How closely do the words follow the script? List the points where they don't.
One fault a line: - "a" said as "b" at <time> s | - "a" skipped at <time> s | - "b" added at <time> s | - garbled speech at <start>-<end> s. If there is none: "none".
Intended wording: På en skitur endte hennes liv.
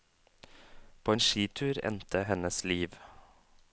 none